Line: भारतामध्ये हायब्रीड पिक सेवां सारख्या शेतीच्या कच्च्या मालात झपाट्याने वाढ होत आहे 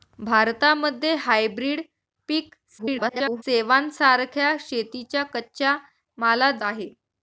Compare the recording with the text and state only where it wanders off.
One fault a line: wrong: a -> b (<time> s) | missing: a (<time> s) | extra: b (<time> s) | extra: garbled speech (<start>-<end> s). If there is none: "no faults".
extra: garbled speech (2.8-3.4 s)
missing: झपाट्याने वाढ होत (6.6 s)